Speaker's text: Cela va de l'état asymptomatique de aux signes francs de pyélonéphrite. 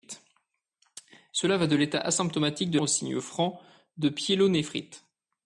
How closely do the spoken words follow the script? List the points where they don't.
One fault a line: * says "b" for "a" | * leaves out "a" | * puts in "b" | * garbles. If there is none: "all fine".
all fine